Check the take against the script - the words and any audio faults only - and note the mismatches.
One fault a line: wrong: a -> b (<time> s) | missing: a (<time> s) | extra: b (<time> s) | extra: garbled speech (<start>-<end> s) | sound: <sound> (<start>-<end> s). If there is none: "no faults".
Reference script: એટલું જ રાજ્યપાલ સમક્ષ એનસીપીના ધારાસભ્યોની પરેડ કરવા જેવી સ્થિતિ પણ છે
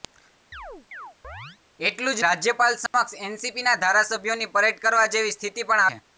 sound: chirp (0.5-1.6 s)
sound: dropout (2.9-2.9 s)